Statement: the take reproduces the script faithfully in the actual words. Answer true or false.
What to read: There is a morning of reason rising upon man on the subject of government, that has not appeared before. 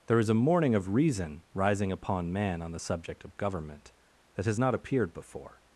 true